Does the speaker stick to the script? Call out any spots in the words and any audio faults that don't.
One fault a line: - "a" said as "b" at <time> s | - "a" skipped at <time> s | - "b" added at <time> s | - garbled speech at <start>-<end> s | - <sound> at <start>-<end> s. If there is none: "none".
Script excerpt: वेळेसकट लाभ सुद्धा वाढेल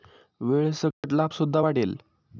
- dropout at 0.9-1.0 s